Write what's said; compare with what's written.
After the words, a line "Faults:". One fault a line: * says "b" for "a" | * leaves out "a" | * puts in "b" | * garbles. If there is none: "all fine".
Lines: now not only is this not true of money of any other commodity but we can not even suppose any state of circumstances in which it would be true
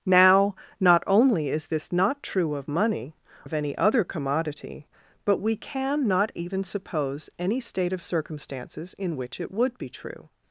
now not only is this not true of money of any other commodity but we can not even suppose any state of circumstances in which it would be true
Faults:
all fine